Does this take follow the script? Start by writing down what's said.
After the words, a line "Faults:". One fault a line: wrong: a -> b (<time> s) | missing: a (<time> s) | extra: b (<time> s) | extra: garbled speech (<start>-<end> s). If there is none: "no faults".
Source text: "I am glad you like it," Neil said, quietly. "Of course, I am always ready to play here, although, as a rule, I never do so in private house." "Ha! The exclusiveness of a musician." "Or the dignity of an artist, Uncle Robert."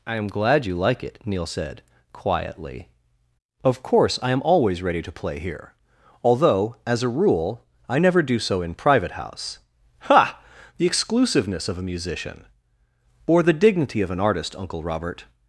"I am glad you like it," Neil said, quietly. "Of course, I am always ready to play here, although, as a rule, I never do so in private house." "Ha! The exclusiveness of a musician." "Or the dignity of an artist, Uncle Robert."
Faults:
no faults